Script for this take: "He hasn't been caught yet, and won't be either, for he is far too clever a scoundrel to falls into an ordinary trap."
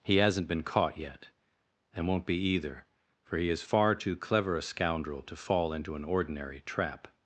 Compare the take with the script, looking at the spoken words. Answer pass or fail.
fail